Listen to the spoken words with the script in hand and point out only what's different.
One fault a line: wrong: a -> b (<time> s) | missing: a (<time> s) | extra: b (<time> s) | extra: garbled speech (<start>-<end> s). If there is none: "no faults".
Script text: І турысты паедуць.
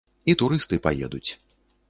no faults